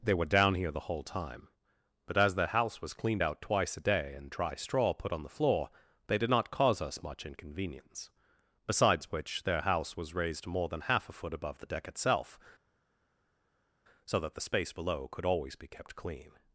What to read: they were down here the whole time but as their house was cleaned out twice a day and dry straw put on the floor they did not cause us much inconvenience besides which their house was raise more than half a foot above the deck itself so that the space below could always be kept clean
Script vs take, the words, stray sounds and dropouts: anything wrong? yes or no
yes